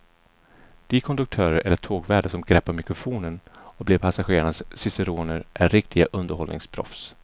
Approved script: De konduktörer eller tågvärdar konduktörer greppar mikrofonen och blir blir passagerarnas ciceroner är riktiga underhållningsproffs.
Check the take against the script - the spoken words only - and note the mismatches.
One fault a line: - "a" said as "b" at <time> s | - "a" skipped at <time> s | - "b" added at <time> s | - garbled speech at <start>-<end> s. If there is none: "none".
- "konduktörer" said as "som" at 2.3 s
- "blir" skipped at 4.0 s